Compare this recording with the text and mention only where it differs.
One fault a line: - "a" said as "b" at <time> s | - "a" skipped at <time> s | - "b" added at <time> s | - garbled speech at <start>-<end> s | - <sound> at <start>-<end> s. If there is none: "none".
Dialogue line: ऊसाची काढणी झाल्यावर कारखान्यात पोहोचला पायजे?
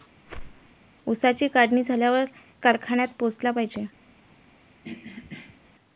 - whoosh at 0.3-0.7 s
- throat clearing at 4.8-5.6 s